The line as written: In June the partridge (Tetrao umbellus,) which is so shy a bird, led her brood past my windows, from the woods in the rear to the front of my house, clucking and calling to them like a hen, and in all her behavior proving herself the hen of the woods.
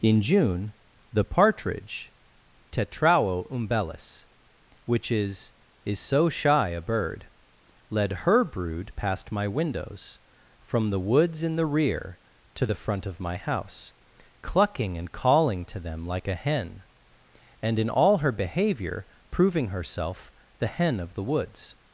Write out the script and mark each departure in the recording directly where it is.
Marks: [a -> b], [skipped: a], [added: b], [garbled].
In June the partridge (Tetrao umbellus,) which is [added: is] so shy a bird, led her brood past my windows, from the woods in the rear to the front of my house, clucking and calling to them like a hen, and in all her behavior proving herself the hen of the woods.